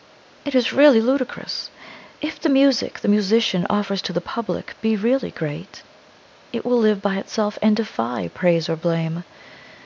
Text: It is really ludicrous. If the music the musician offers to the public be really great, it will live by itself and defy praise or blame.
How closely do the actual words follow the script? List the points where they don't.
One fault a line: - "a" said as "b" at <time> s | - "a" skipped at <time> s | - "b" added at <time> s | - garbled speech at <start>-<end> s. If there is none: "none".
none